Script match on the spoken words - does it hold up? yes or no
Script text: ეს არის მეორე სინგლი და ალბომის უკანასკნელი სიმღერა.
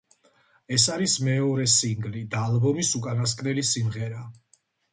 yes